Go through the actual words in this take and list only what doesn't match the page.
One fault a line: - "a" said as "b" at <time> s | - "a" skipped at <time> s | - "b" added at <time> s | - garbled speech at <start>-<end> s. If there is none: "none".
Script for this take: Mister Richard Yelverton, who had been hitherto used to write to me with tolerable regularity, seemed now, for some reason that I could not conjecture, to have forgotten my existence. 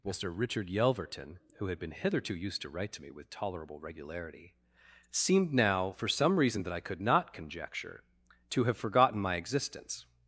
none